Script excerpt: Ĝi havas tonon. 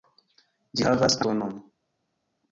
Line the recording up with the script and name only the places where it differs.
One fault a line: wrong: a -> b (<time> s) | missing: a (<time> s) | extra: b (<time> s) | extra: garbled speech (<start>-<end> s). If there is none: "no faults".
no faults